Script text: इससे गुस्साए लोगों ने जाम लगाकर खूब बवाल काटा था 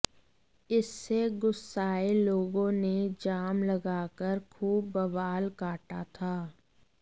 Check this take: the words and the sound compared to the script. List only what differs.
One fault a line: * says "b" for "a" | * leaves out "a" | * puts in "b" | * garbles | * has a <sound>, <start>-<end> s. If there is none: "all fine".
all fine